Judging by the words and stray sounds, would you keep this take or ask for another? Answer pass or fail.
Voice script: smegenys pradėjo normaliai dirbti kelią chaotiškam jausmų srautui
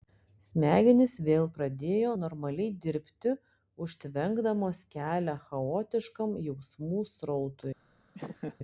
fail